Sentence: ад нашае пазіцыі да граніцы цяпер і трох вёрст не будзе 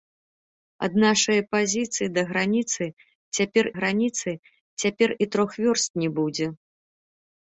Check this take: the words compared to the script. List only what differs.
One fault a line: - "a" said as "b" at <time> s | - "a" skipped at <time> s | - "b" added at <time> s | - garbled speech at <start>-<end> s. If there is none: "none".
- "граніцы цяпер" added at 3.8 s